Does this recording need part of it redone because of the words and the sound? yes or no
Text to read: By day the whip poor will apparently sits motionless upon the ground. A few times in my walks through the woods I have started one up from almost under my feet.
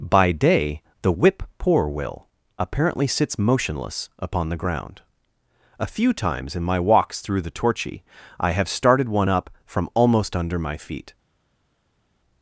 yes